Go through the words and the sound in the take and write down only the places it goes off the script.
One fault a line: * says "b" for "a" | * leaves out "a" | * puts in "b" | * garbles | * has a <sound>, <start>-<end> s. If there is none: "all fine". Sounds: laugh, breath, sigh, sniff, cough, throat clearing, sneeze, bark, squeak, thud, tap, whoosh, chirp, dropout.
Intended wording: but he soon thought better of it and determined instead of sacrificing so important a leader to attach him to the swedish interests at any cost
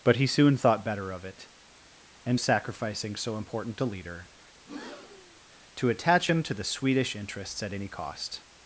* leaves out "determined instead of"
* has a breath, 4.6-5.4 s